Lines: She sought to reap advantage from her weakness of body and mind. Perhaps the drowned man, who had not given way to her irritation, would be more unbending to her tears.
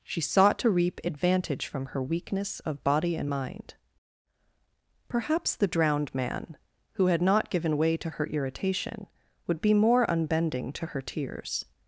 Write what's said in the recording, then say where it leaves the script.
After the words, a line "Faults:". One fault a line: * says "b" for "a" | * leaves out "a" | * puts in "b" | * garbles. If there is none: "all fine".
She sought to reap advantage from her weakness of body and mind. Perhaps the drowned man, who had not given way to her irritation, would be more unbending to her tears.
Faults:
all fine